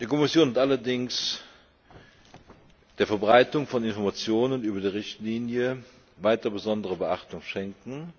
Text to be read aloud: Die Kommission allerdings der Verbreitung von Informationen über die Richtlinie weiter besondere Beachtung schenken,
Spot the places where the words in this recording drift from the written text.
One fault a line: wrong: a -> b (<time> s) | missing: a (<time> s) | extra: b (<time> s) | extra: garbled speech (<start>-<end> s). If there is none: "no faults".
no faults